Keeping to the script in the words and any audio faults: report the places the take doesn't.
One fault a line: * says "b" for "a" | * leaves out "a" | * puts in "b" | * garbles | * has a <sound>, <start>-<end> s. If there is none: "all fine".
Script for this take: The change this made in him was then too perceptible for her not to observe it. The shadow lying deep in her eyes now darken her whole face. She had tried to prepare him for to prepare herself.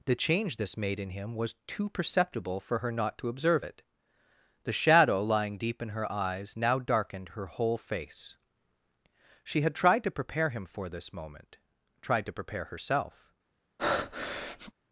* leaves out "then"
* says "darkened" for "darken"
* puts in "this moment tried"
* has a breath, 13.8-14.7 s